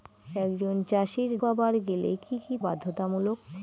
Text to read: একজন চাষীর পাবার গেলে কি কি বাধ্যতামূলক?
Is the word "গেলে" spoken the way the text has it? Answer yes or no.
yes